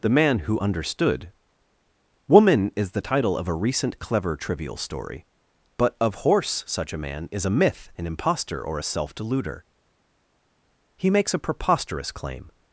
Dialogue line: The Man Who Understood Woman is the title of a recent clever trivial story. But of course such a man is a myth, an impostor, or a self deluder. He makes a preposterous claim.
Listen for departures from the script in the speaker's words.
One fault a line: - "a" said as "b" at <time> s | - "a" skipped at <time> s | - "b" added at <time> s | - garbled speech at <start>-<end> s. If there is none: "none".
- "course" said as "horse" at 6.2 s